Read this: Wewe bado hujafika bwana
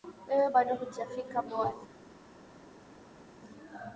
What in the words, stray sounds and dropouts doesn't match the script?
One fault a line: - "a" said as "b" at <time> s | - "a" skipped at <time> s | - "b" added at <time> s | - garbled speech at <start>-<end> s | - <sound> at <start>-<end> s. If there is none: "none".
none